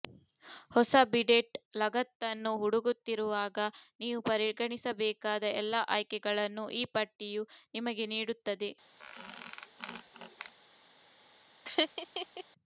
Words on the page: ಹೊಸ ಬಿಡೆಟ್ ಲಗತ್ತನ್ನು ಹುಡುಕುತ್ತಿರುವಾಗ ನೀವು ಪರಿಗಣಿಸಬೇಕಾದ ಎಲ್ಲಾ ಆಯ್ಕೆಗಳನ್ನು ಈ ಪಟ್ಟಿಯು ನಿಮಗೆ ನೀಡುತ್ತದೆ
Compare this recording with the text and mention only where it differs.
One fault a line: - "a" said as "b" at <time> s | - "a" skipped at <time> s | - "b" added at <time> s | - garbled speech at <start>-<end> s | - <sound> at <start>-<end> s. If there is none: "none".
- squeak at 9.0-10.5 s
- laugh at 11.6-12.4 s